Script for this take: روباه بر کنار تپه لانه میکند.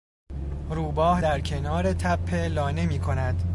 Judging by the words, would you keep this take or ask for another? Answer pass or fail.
fail